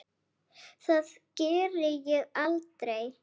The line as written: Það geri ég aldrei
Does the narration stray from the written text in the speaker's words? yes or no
no